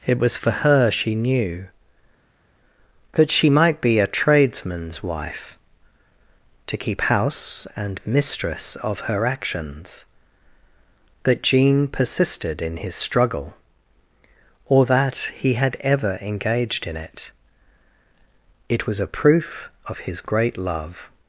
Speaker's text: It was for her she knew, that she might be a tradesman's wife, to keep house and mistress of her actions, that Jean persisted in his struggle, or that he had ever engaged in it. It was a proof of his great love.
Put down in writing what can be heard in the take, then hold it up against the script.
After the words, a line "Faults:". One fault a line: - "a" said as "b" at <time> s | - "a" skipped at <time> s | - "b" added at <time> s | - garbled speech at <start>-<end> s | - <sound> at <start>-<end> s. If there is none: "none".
It was for her she knew, that she might be a tradesman's wife, to keep house and mistress of her actions, that Jean persisted in his struggle, or that he had ever engaged in it. It was a proof of his great love.
Faults:
none